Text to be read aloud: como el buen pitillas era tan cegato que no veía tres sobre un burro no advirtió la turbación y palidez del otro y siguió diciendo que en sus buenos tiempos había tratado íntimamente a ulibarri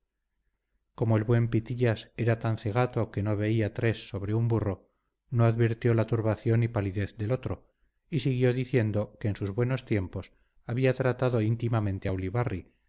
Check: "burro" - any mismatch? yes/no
no